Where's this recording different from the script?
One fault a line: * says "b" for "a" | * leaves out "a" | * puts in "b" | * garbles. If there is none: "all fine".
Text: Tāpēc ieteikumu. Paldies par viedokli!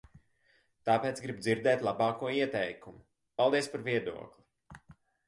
* puts in "gribu dzirdēt labāko"